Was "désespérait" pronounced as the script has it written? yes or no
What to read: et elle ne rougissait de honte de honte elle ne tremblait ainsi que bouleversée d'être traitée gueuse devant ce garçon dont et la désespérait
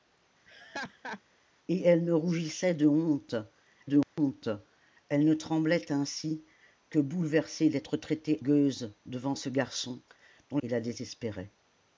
yes